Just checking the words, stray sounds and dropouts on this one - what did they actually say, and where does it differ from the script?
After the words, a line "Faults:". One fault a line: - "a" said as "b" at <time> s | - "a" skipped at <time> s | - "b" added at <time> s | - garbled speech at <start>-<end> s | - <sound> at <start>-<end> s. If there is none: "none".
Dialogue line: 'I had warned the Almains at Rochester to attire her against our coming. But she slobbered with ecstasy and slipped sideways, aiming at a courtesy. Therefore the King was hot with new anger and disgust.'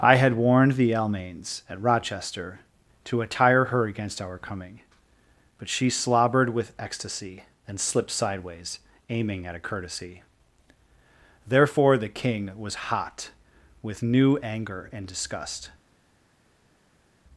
'I had warned the Almains at Rochester to attire her against our coming. But she slobbered with ecstasy and slipped sideways, aiming at a courtesy. Therefore the King was hot with new anger and disgust.'
Faults:
none